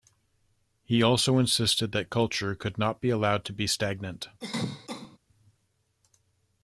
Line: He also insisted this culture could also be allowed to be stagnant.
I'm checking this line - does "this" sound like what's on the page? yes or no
no